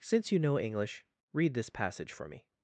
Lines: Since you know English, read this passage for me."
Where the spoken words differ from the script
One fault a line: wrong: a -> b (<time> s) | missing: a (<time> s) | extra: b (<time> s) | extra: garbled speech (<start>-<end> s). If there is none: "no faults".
no faults